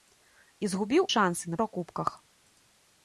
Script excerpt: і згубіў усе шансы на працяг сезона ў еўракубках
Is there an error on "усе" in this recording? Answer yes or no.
yes